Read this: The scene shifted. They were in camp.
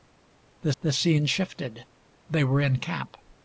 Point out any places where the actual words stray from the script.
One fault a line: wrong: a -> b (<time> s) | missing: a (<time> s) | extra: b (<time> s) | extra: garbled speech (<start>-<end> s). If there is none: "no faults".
extra: the (0.8 s)